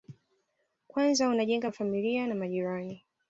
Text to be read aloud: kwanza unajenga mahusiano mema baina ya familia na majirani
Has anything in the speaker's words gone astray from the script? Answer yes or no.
yes